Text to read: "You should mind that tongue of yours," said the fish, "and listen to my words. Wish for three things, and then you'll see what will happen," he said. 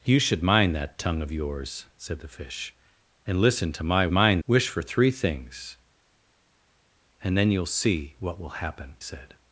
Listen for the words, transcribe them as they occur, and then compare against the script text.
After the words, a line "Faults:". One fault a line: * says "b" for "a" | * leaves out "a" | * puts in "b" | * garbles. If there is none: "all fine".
"You should mind that tongue of yours," said the fish, "and listen to my mind. Wish for three things, and then you'll see what will happen," said.
Faults:
* says "mind" for "words"
* leaves out "he"